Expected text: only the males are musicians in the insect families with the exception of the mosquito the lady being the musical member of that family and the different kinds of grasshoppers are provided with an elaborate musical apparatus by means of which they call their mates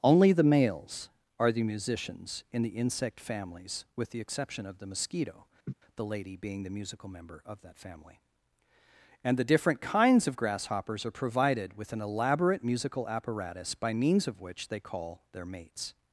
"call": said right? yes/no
yes